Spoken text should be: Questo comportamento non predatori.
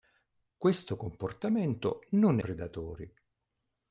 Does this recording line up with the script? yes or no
yes